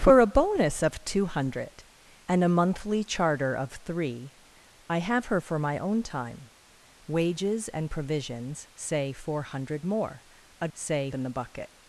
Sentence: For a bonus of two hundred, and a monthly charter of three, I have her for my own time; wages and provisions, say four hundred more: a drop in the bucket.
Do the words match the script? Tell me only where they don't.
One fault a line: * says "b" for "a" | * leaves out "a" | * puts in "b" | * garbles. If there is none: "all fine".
* says "say" for "drop"